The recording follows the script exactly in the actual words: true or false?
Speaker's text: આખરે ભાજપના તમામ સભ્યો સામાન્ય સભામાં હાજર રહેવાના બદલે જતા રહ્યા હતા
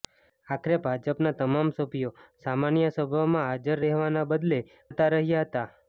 true